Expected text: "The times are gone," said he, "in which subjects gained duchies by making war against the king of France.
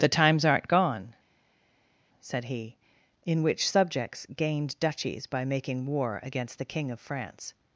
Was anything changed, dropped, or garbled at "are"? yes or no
yes